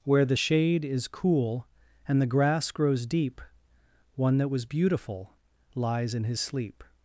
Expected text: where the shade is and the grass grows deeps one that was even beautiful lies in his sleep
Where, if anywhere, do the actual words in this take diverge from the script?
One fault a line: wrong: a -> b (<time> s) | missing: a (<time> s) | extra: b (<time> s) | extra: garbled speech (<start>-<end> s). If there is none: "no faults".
extra: cool (1.1 s)
wrong: deeps -> deep (3.1 s)
missing: even (4.7 s)